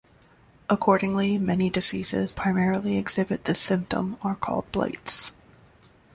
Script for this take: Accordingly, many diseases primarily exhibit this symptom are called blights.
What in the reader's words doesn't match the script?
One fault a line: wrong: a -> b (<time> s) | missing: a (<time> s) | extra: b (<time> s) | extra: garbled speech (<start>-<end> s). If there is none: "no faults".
no faults